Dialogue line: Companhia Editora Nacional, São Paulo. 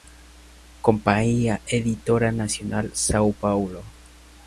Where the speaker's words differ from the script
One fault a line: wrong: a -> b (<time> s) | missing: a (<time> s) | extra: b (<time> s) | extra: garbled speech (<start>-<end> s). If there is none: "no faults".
no faults